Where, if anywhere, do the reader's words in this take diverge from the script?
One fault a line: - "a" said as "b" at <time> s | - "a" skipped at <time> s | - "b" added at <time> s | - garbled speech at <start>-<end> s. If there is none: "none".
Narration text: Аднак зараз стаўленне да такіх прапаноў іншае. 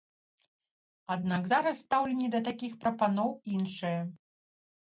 none